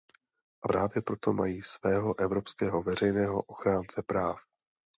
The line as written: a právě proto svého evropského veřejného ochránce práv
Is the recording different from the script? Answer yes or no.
yes